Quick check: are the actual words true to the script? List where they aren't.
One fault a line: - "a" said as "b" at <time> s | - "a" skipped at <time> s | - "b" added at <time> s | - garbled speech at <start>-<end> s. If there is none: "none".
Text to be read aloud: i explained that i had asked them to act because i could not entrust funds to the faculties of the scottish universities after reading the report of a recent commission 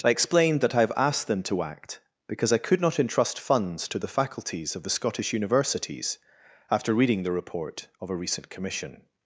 - "had" said as "have" at 0.8 s